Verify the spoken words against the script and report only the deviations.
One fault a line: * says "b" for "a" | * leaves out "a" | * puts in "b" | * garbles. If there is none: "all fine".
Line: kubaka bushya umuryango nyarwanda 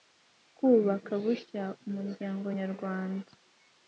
all fine